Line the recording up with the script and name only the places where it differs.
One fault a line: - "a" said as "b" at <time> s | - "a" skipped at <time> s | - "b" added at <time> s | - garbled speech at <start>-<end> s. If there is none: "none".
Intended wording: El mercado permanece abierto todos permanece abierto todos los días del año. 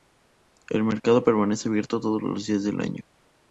- "permanece abierto todos" skipped at 2.2 s